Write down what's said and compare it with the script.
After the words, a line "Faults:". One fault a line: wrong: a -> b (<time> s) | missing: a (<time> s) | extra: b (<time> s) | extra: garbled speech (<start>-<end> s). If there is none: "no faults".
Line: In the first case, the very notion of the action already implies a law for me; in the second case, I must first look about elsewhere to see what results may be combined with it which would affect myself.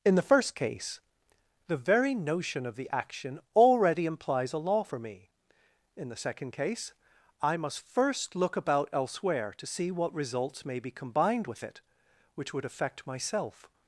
In the first case, the very notion of the action already implies a law for me; in the second case, I must first look about elsewhere to see what results may be combined with it which would affect myself.
Faults:
no faults